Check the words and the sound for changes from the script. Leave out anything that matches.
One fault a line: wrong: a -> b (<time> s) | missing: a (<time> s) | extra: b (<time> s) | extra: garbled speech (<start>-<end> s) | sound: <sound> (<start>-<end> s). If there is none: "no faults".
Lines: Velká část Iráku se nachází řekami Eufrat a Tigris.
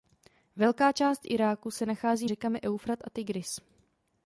no faults